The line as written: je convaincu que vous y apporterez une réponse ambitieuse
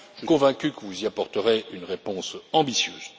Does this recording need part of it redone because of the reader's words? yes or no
no